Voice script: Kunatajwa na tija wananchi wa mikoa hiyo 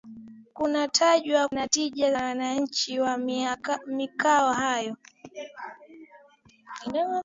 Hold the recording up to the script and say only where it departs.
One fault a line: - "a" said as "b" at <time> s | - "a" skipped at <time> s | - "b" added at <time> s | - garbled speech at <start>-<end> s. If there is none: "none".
none